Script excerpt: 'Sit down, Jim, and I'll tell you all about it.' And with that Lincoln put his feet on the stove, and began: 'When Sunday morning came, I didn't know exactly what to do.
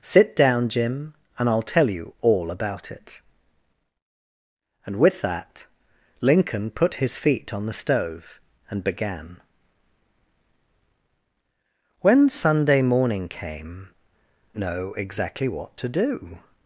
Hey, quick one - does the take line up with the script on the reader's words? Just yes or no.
no